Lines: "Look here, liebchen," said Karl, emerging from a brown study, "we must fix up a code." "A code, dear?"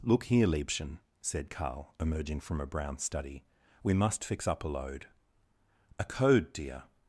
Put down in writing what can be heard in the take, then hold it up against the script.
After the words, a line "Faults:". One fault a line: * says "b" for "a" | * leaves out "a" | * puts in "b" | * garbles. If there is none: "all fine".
"Look here, liebchen," said Karl, emerging from a brown study, "we must fix up a load." "A code, dear?"
Faults:
* says "load" for "code"